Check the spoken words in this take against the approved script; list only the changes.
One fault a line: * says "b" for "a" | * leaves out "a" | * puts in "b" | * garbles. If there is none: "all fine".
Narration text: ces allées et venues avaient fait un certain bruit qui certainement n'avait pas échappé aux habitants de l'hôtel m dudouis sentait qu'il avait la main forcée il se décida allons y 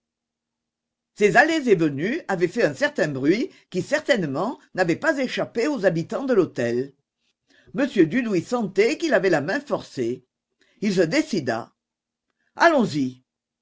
all fine